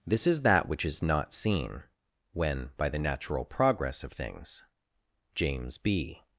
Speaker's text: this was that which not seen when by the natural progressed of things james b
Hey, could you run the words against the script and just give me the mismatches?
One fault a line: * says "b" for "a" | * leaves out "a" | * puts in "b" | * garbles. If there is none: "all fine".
* says "is" for "was"
* puts in "is"
* says "progress" for "progressed"